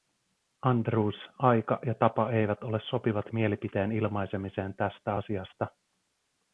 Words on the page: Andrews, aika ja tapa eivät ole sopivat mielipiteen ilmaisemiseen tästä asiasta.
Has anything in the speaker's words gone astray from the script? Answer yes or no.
no